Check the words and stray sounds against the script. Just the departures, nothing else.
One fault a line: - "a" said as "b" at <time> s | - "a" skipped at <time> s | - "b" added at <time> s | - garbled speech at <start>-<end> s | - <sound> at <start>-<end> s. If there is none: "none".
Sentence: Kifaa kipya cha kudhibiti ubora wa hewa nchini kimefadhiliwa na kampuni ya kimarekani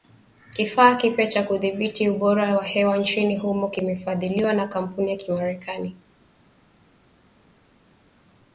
- "humo" added at 3.4 s